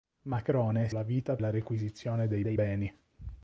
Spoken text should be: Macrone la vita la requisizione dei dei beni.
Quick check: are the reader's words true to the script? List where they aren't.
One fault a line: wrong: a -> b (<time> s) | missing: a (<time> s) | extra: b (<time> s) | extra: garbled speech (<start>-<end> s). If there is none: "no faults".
no faults